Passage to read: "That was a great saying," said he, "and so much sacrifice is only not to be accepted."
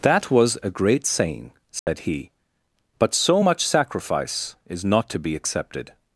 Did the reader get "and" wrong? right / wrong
wrong